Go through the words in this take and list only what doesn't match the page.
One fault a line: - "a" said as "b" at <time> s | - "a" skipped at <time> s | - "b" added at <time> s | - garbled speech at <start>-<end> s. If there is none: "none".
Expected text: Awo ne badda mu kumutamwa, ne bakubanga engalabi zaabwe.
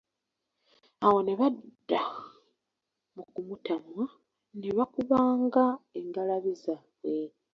none